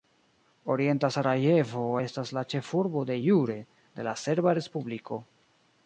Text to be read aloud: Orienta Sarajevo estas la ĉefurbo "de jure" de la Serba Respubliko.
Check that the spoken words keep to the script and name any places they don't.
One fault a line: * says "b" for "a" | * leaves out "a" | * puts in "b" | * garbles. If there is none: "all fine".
all fine